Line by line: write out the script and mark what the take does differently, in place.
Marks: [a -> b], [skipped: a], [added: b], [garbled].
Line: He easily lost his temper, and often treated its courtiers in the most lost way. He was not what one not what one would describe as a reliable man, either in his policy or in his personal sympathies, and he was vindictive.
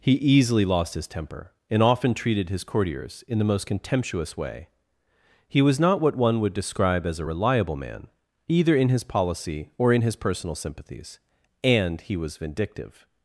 He easily lost his temper, and often treated [its -> his] courtiers in the most [lost -> contemptuous] way. He was not what one [skipped: not what one] would describe as a reliable man, either in his policy or in his personal sympathies, and he was vindictive.